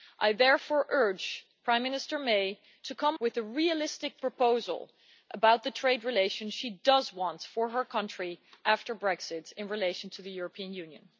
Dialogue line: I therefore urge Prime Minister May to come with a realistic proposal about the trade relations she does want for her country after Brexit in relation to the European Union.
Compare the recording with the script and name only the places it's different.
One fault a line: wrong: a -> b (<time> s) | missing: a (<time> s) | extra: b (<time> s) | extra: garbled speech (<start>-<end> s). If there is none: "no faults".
no faults